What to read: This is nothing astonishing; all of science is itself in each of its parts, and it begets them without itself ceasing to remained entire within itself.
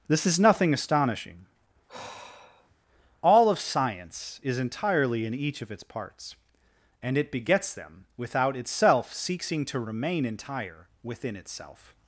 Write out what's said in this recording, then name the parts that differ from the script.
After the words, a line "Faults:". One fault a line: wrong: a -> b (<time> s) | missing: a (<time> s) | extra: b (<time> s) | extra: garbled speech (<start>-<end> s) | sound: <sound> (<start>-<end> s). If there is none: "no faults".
This is nothing astonishing; all of science is entirely in each of its parts, and it begets them without itself ceasing to remain entire within itself.
Faults:
sound: sigh (1.9-2.8 s)
wrong: itself -> entirely (4.6 s)
wrong: remained -> remain (9.8 s)